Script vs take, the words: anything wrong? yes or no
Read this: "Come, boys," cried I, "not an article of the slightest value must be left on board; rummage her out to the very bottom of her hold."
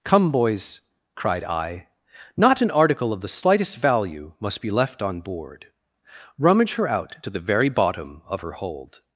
no